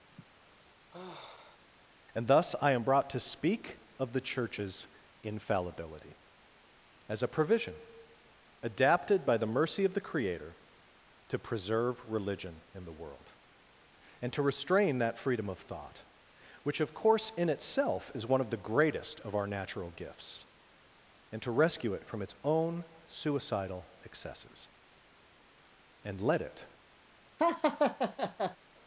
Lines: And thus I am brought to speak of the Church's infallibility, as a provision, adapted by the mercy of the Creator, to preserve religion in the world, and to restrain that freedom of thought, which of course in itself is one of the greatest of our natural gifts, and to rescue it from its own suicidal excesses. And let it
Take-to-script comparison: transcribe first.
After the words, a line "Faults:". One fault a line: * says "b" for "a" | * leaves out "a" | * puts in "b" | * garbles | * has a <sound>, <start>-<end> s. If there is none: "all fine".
And thus I am brought to speak of the Church's infallibility, as a provision, adapted by the mercy of the Creator, to preserve religion in the world, and to restrain that freedom of thought, which of course in itself is one of the greatest of our natural gifts, and to rescue it from its own suicidal excesses. And let it
Faults:
* has a sigh, 0.1-1.6 s
* has a laugh, 27.4-28.6 s